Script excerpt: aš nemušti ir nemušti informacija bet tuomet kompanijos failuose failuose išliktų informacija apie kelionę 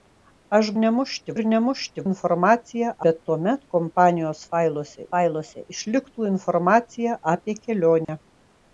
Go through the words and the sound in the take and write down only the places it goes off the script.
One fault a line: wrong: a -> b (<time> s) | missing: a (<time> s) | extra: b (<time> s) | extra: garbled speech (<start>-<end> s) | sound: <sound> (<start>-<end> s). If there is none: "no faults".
sound: dropout (8.0-8.1 s)